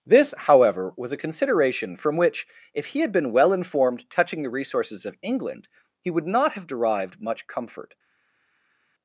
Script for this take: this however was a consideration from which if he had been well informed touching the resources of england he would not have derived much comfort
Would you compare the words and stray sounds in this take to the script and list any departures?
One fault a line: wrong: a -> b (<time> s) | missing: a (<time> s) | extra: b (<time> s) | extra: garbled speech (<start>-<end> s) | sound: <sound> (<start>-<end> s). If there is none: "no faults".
no faults